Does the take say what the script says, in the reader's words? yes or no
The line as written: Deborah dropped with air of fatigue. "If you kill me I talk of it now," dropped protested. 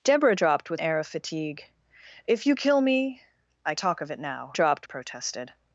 yes